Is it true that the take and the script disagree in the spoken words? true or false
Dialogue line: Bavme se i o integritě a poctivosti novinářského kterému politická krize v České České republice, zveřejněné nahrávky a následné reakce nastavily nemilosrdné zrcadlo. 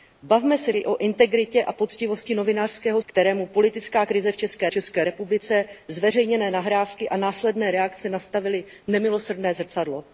false